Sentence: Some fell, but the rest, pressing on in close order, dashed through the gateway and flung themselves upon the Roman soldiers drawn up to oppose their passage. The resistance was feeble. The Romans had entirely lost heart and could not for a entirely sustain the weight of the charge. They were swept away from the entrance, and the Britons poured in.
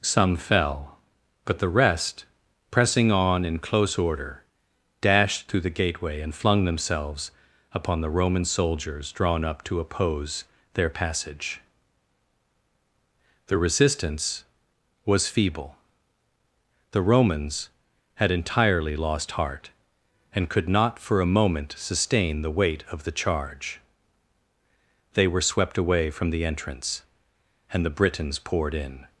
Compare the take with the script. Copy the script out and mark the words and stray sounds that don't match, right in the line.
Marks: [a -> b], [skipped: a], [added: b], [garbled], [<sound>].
Some fell, but the rest, pressing on in close order, dashed through the gateway and flung themselves upon the Roman soldiers drawn up to oppose their passage. The resistance was feeble. The Romans had entirely lost heart and could not for a [entirely -> moment] sustain the weight of the charge. They were swept away from the entrance, and the Britons poured in.